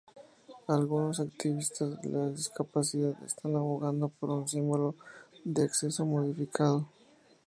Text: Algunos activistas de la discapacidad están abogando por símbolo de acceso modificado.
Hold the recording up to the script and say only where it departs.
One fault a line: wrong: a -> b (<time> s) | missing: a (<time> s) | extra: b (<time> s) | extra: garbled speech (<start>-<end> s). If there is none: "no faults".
extra: un (4.3 s)